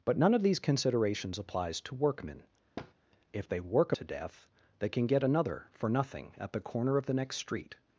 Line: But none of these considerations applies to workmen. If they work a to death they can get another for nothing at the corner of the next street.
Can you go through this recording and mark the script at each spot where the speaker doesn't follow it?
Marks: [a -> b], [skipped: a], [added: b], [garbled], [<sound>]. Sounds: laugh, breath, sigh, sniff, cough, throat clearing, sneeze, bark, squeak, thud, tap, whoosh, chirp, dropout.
But none of these considerations applies to workmen. [thud] If they work a to death they can get another for nothing at the corner of the next street.